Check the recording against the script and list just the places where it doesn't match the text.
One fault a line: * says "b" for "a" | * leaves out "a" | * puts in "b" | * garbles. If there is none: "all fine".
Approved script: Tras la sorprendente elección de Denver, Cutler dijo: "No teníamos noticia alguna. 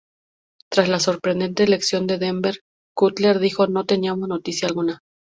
all fine